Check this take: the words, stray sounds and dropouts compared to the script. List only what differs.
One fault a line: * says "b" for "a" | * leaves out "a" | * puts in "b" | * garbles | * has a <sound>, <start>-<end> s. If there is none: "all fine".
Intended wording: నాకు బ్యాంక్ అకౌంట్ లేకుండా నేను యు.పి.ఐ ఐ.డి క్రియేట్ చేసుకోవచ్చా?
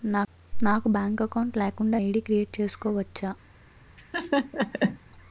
* leaves out "నేను యు.పి.ఐ"
* has a laugh, 4.0-5.0 s